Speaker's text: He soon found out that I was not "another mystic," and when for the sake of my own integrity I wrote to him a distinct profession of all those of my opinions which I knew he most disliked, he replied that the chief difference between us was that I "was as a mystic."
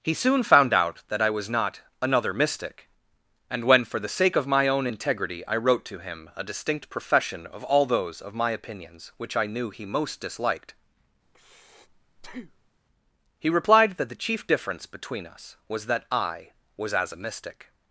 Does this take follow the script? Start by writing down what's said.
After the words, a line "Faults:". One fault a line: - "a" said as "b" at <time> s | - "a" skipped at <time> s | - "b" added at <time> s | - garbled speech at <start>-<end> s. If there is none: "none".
He soon found out that I was not "another mystic," and when for the sake of my own integrity I wrote to him a distinct profession of all those of my opinions which I knew he most disliked, he replied that the chief difference between us was that I "was as a mystic."
Faults:
none